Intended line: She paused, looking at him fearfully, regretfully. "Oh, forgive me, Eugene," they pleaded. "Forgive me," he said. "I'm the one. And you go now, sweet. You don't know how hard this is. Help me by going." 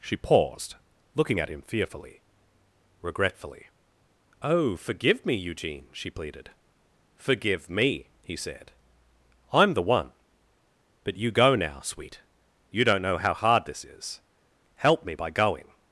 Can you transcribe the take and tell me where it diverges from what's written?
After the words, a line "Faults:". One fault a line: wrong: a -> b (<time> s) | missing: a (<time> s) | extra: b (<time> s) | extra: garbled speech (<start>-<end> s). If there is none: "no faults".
She paused, looking at him fearfully, regretfully. "Oh, forgive me, Eugene," she pleaded. "Forgive me," he said. "I'm the one. But you go now, sweet. You don't know how hard this is. Help me by going."
Faults:
wrong: they -> she (5.9 s)
wrong: And -> But (11.0 s)